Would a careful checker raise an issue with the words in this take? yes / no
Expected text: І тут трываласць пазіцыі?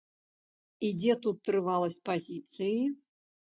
yes